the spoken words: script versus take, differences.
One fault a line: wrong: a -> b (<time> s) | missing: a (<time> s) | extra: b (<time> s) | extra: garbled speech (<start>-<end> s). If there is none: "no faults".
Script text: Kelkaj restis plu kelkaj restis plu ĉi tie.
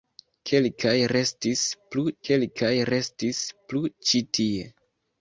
no faults